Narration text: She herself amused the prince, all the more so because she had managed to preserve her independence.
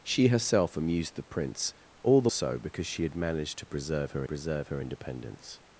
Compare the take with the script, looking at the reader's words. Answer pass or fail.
fail